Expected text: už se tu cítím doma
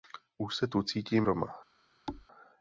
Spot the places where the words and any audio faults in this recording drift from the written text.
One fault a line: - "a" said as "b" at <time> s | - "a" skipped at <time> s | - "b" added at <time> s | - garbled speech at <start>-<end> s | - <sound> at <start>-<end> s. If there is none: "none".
- thud at 2.1-2.3 s